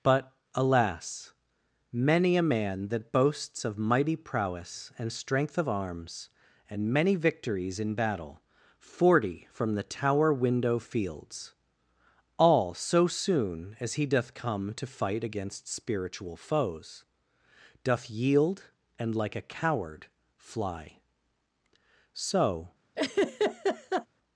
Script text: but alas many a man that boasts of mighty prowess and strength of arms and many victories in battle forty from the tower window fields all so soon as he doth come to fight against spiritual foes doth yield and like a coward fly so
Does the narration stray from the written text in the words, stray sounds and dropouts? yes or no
yes